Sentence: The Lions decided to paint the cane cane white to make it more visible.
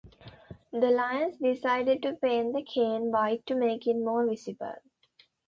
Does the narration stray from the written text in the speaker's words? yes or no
yes